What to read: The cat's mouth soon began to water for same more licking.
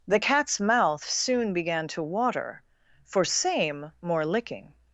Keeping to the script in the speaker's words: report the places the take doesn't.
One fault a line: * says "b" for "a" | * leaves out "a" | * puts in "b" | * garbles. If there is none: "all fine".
all fine